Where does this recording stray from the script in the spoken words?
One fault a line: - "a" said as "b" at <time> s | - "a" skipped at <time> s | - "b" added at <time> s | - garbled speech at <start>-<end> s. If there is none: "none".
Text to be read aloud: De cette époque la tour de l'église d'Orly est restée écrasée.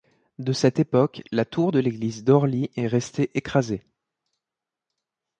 none